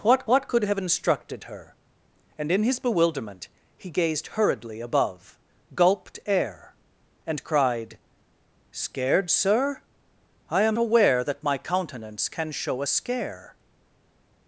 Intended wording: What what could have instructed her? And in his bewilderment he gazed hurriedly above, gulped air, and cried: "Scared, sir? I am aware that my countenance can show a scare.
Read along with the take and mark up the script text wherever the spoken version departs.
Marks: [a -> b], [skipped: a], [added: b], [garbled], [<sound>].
What what could have instructed her? And in his bewilderment he gazed hurriedly above, gulped air, and cried: "Scared, sir? I am aware that my countenance can show a scare.